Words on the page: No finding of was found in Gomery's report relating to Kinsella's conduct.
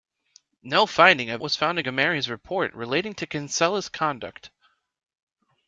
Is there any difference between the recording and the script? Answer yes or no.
no